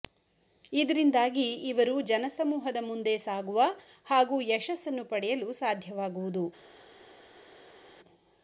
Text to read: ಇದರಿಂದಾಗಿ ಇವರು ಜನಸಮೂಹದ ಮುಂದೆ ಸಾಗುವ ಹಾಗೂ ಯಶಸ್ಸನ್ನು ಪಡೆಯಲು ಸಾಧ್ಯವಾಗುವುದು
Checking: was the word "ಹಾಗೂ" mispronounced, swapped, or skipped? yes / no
no